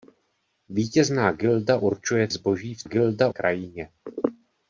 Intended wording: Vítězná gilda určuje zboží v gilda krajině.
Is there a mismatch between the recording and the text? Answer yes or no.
no